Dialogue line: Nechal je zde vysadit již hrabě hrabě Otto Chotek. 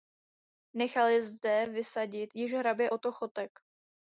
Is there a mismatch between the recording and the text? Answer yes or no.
yes